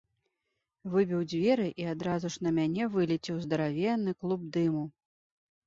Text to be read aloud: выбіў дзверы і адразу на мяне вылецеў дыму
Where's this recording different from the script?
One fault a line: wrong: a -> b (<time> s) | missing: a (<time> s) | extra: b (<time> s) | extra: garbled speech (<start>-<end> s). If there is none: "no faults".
extra: ж (2.4 s)
extra: здаравенны клуб (3.5 s)